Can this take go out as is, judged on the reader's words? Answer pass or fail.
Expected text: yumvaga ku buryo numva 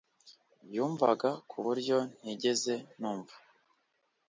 fail